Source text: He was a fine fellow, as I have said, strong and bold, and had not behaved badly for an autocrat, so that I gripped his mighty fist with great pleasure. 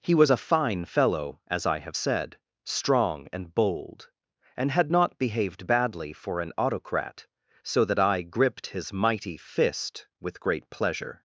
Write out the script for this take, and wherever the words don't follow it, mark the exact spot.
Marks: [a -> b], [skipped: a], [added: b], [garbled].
He was a fine fellow, as I have said, strong and bold, and had not behaved badly for an autocrat, so that I gripped his mighty fist with great pleasure.